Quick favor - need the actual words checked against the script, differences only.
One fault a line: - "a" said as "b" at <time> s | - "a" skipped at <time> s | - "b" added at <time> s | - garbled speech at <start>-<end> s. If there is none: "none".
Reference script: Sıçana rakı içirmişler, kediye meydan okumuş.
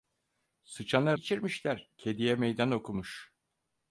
- "rakı" skipped at 1.2 s